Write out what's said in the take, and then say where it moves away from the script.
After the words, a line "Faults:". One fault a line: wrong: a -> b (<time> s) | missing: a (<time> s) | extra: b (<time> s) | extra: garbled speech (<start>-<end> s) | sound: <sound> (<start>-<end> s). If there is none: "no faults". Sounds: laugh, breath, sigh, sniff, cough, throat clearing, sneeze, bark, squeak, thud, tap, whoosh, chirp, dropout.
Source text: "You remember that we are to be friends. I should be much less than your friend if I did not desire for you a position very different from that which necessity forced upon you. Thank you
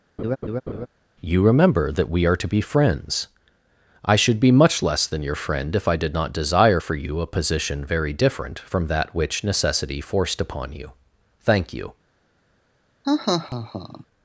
"You remember that we are to be friends. I should be much less than your friend if I did not desire for you a position very different from that which necessity forced upon you. Thank you
Faults:
sound: laugh (0.2-0.9 s)
sound: laugh (13.0-14.0 s)